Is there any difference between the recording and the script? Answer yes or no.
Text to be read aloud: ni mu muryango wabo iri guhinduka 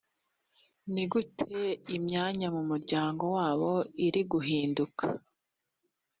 yes